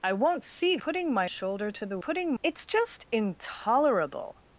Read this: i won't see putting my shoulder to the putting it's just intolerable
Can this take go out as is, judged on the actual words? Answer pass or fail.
pass